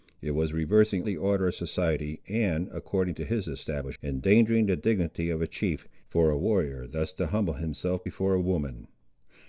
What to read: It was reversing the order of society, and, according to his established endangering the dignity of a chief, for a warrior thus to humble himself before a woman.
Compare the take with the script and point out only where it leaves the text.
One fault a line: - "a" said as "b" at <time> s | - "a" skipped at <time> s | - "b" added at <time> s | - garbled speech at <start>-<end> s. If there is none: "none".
none